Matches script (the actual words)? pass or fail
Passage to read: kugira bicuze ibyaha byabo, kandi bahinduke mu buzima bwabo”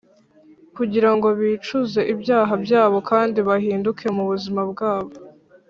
fail